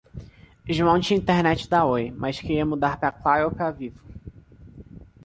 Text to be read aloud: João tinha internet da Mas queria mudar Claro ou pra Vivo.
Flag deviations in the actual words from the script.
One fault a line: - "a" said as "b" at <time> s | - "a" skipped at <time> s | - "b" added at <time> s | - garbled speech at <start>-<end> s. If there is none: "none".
- "Oi" added at 1.9 s
- "pra" added at 3.0 s